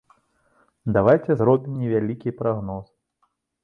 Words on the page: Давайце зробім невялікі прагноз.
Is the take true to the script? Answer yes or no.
yes